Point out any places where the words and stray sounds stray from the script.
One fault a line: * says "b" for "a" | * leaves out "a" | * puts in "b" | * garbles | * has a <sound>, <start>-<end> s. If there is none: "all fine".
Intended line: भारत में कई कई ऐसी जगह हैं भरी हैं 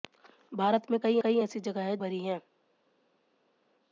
all fine